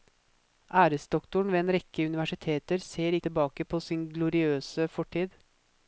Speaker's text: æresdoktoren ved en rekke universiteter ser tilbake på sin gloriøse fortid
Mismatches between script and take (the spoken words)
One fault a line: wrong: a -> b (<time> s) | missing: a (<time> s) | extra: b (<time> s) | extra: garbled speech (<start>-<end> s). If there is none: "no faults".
no faults